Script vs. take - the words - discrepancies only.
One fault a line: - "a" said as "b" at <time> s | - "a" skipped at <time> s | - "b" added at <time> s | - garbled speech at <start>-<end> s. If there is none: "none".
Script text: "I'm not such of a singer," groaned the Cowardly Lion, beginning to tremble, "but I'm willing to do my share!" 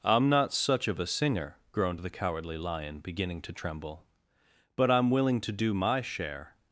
none